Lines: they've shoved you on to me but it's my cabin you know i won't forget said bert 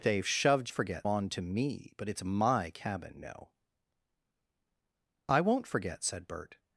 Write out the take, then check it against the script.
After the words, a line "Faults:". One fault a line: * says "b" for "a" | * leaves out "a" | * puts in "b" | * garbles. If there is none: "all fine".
they've shoved forget on to me but it's my cabin know i won't forget said bert
Faults:
* says "forget" for "you"
* leaves out "you"